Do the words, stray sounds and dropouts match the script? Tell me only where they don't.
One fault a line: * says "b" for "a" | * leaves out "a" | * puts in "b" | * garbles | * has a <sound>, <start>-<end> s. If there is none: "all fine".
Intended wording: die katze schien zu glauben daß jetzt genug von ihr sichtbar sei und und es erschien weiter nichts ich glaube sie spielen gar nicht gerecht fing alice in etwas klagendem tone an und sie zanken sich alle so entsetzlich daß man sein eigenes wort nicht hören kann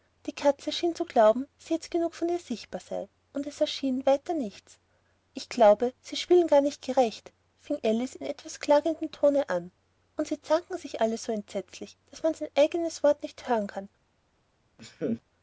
* leaves out "und"
* has a laugh, 14.8-15.2 s